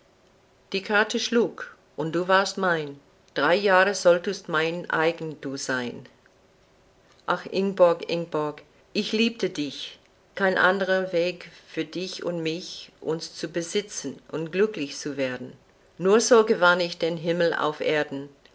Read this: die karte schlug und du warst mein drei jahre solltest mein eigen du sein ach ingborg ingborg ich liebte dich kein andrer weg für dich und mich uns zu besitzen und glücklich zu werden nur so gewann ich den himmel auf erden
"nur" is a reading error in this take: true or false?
false